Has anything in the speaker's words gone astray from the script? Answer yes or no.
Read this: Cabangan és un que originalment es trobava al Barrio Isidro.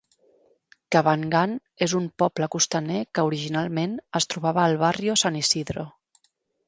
yes